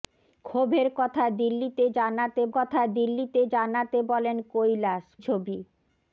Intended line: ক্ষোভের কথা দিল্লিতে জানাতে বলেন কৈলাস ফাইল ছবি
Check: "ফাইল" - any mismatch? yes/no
yes